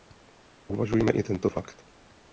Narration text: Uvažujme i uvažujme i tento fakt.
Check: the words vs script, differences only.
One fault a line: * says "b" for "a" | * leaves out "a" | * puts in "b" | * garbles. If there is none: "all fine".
* leaves out "uvažujme i"